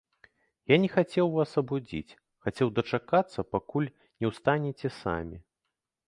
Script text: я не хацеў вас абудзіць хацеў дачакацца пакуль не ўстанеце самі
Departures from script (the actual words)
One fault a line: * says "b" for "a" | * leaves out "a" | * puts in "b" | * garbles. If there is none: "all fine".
all fine